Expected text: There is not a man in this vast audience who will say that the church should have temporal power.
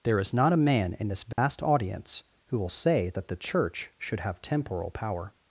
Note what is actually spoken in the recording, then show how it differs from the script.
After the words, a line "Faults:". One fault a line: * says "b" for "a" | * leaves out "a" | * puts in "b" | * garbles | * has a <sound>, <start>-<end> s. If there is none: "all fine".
There is not a man in this vast audience who will say that the church should have temporal power.
Faults:
* has a dropout, 1.3-1.4 s